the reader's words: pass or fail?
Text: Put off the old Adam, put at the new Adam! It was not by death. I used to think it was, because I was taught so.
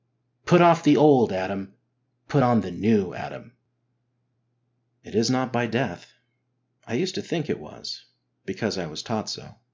fail